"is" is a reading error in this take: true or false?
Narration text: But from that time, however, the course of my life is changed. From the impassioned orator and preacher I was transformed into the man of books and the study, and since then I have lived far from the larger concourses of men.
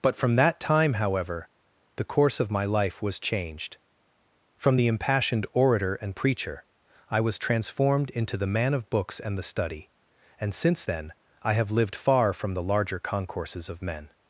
true